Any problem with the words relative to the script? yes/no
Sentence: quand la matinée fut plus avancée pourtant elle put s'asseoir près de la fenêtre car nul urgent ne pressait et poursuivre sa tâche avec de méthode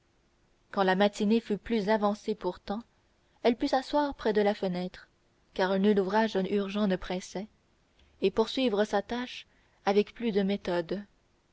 yes